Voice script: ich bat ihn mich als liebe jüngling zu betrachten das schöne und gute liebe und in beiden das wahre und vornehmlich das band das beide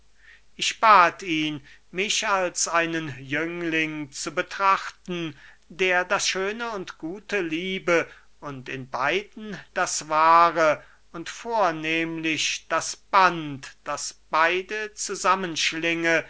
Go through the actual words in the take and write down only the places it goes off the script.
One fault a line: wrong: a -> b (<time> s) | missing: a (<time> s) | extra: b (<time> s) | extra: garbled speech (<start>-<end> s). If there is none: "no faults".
wrong: liebe -> einen (2.7 s)
extra: der (5.7 s)